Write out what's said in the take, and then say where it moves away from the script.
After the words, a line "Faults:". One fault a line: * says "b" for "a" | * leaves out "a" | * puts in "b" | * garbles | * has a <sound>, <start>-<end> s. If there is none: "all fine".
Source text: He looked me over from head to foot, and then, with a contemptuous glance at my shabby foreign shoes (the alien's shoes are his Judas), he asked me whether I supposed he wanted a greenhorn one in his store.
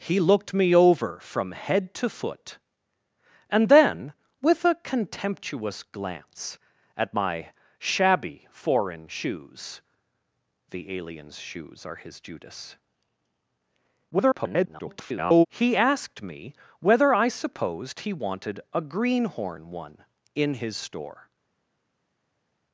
He looked me over from head to foot, and then, with a contemptuous glance at my shabby foreign shoes (the alien's shoes are his Judas), [garbled] he asked me whether I supposed he wanted a greenhorn one in his store.
Faults:
* garbles